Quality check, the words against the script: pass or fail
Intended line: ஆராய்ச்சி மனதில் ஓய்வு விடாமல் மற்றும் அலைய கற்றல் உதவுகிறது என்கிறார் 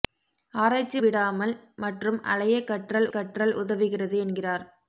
fail